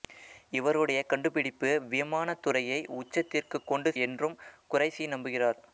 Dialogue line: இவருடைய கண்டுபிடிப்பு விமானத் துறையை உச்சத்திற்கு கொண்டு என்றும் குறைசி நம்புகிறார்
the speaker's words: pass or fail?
pass